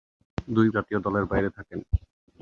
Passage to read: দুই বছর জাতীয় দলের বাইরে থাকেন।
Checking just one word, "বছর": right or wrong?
wrong